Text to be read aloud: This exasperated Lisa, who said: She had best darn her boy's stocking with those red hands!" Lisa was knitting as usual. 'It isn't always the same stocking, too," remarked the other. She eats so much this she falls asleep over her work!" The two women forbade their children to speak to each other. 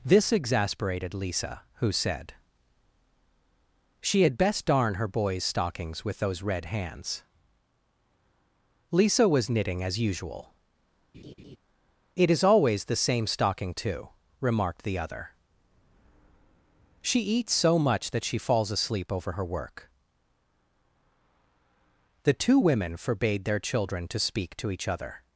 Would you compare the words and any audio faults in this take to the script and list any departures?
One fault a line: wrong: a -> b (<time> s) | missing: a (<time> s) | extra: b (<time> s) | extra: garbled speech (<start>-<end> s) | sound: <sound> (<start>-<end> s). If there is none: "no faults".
wrong: stocking -> stockings (5.4 s)
sound: laugh (11.1-11.6 s)
wrong: isn't -> is (12.3 s)
wrong: this -> that (18.1 s)